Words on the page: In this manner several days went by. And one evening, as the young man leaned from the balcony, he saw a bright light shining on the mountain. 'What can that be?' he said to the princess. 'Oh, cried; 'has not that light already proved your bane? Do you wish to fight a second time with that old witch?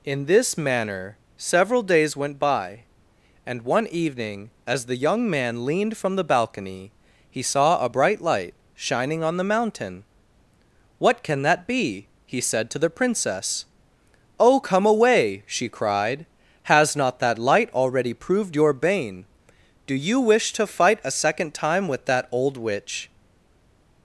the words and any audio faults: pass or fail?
fail